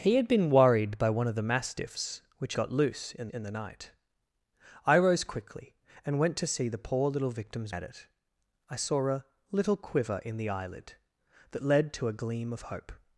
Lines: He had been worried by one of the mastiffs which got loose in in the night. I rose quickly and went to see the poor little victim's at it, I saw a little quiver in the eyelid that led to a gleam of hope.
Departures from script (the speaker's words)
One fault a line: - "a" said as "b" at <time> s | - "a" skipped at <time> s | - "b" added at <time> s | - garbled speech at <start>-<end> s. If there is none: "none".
none